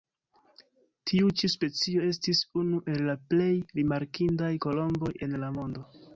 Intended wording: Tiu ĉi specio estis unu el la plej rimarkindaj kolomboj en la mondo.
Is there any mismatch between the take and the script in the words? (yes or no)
no